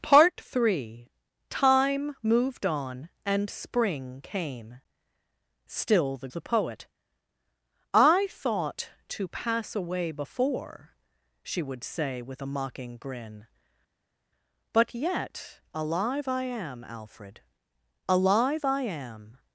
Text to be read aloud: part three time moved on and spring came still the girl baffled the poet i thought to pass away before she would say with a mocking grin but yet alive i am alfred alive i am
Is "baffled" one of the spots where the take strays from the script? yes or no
yes